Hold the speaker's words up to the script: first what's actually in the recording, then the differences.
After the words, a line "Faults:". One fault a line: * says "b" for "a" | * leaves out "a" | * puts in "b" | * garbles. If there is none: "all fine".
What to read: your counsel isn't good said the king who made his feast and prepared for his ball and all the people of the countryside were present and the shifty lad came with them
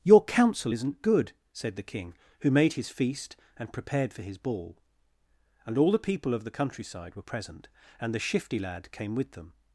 your counsel isn't good said the king who made his feast and prepared for his ball and all the people of the countryside were present and the shifty lad came with them
Faults:
all fine